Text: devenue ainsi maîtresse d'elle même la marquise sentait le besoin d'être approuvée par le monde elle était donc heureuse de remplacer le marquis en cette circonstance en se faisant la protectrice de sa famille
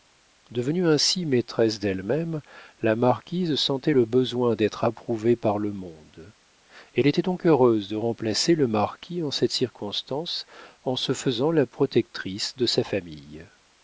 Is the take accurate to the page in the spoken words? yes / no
yes